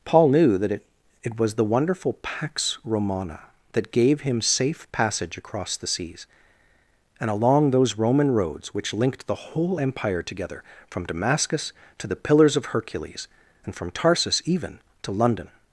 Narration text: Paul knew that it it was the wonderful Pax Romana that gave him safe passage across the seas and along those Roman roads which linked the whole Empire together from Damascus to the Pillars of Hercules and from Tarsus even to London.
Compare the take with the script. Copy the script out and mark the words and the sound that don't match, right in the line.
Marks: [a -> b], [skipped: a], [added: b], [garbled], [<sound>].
Paul knew that it it was the wonderful Pax Romana that gave him safe passage across the seas and along those Roman roads which linked the whole Empire together from Damascus to the Pillars of Hercules and from Tarsus even to London.